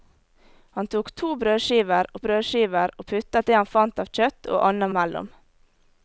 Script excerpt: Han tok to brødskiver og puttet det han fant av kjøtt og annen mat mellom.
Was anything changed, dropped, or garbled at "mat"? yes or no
yes